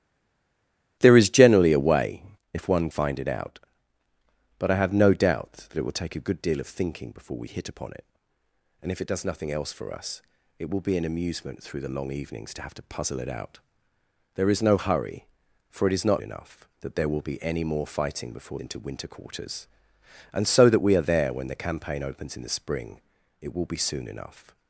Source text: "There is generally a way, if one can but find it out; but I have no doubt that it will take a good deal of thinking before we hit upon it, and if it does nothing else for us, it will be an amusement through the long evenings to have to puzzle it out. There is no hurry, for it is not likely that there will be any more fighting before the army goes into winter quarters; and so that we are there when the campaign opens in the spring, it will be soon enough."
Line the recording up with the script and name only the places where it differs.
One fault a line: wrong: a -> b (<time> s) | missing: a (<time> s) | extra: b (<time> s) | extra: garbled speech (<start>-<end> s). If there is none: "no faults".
missing: can but (2.9 s)
wrong: likely -> enough (16.2 s)
missing: the army goes (18.6 s)